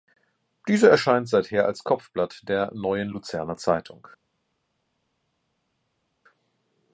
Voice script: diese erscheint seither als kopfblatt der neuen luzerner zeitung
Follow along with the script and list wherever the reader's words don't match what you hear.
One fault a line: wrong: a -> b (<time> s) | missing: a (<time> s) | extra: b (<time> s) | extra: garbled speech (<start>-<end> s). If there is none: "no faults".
no faults